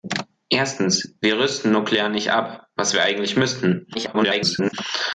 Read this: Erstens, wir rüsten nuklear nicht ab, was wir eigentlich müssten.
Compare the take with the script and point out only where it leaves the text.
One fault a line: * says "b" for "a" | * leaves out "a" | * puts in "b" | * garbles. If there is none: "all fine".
* garbles